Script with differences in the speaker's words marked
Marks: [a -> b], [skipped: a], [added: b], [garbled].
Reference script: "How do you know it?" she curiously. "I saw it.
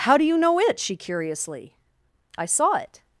"How do you know it?" she curiously. "I saw it.